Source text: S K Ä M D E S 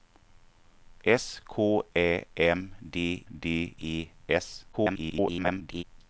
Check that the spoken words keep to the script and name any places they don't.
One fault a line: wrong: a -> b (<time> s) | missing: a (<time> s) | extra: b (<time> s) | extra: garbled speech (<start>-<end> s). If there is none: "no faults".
extra: D (3.3 s)
extra: garbled speech (4.7-5.8 s)